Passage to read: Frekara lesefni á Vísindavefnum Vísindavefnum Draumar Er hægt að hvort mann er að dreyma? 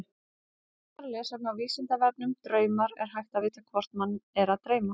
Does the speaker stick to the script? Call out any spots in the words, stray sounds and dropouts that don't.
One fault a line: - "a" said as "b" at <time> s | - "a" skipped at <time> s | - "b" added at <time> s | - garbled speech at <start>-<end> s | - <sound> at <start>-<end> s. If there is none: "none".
- "Vísindavefnum" skipped at 2.3 s
- "vita" added at 3.4 s